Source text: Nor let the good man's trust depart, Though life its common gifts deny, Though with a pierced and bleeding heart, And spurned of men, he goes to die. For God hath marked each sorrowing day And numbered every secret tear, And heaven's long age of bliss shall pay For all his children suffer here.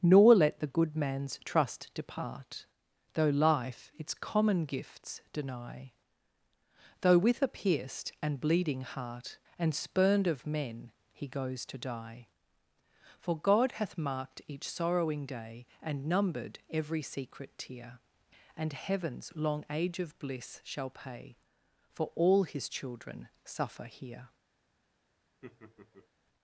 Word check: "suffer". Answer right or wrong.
right